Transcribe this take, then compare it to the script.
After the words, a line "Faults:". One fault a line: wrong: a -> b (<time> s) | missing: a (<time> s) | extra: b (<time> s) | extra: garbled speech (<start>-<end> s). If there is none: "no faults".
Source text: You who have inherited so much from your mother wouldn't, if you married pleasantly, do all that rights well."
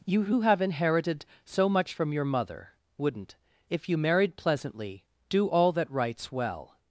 You who have inherited so much from your mother wouldn't, if you married pleasantly, do all that rights well."
Faults:
no faults